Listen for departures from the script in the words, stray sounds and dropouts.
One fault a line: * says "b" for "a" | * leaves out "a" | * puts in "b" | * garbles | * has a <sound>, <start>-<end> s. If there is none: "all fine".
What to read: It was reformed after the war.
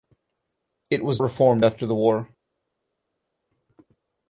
all fine